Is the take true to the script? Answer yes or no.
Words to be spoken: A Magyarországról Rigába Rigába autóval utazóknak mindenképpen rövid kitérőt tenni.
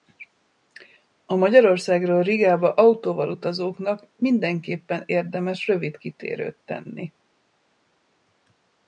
no